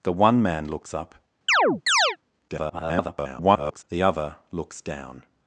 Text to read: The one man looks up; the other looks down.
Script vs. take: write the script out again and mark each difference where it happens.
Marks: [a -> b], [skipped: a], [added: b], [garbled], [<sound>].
The one man looks up; [chirp] [garbled] the other looks down.